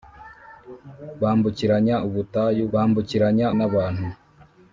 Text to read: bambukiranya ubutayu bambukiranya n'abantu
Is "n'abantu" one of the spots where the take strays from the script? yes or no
no